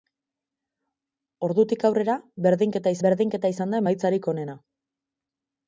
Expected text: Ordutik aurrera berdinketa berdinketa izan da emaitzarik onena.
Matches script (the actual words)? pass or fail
pass